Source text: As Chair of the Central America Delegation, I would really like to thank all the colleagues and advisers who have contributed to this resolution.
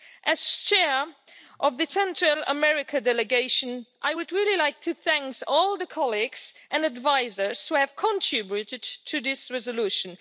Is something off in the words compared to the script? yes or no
no